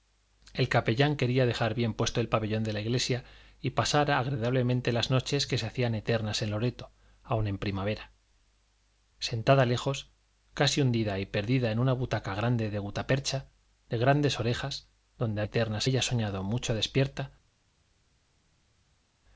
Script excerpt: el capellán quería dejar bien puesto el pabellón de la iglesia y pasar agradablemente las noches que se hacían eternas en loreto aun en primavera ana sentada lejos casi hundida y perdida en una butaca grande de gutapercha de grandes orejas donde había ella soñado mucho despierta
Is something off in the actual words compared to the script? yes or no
yes